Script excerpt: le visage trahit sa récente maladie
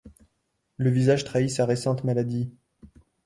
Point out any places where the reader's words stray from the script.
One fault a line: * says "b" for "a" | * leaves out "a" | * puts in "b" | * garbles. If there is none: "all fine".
all fine